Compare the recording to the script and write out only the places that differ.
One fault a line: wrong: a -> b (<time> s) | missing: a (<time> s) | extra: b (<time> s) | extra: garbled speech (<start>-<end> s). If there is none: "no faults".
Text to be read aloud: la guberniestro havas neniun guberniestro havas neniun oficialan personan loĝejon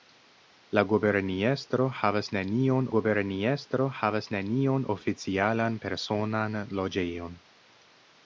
no faults